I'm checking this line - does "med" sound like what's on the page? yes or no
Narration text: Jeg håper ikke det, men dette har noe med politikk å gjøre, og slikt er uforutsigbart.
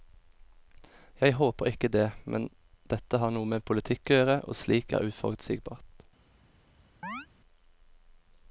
yes